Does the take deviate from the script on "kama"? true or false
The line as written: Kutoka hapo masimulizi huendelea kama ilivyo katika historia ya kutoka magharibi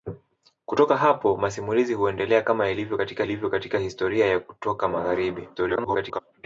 false